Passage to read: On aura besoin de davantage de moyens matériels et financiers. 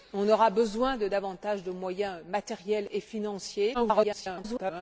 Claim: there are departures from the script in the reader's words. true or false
true